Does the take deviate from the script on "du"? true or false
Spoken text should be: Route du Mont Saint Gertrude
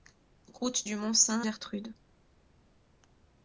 false